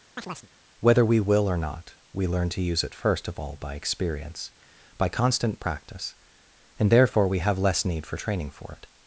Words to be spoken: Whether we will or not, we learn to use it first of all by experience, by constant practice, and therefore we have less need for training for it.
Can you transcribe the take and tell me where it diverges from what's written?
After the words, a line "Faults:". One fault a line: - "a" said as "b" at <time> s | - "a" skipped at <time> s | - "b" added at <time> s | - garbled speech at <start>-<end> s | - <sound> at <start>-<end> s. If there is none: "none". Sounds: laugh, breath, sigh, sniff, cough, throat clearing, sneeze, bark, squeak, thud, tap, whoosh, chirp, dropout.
Whether we will or not, we learn to use it first of all by experience, by constant practice, and therefore we have less need for training for it.
Faults:
- chirp at 0.2-0.5 s